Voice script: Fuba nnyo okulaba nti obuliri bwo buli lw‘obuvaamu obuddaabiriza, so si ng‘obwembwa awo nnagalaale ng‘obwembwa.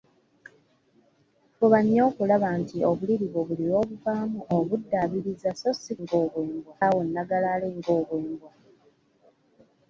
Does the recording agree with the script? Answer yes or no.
yes